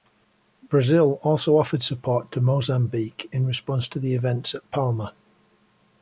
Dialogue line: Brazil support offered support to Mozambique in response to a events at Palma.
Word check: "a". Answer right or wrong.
wrong